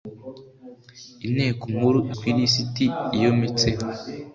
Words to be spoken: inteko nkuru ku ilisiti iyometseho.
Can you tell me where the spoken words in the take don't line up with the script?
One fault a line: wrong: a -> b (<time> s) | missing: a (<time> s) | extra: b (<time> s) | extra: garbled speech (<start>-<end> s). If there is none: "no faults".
no faults